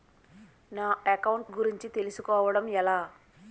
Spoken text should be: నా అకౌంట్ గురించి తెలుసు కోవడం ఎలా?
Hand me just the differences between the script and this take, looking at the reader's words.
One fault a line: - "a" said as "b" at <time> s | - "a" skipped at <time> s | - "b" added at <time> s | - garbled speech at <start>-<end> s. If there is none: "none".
none